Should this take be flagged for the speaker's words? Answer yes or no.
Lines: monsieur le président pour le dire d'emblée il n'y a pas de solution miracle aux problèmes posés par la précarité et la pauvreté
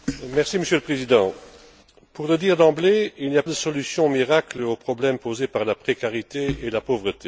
yes